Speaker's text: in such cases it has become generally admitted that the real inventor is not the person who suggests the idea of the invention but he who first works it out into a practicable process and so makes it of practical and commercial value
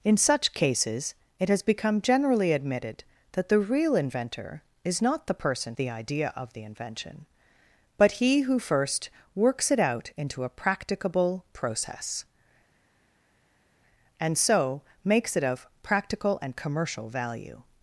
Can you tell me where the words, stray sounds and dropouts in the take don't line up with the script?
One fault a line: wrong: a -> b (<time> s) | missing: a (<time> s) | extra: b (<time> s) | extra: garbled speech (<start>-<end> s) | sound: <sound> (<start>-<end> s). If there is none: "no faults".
missing: who suggests (5.8 s)